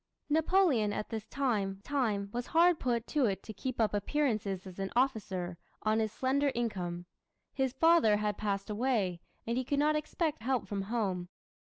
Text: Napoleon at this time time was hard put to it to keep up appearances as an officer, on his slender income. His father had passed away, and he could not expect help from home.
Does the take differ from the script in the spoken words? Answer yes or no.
no